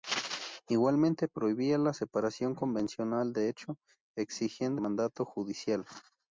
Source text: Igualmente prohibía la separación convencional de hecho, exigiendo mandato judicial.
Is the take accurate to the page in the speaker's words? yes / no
yes